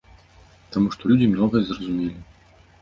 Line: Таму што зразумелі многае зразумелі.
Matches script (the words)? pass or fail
fail